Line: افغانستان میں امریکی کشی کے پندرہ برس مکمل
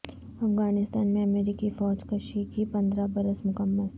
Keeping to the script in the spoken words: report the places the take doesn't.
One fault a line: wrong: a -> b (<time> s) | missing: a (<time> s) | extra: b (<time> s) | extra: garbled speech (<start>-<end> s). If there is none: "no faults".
extra: فوج (1.7 s)